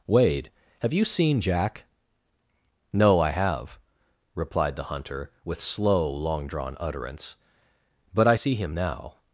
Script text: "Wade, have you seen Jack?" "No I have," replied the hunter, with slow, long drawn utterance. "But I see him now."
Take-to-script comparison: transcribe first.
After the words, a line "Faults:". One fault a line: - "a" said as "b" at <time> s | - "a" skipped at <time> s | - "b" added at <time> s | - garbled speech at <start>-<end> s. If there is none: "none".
"Wade, have you seen Jack?" "No I have," replied the hunter, with slow, long drawn utterance. "But I see him now."
Faults:
none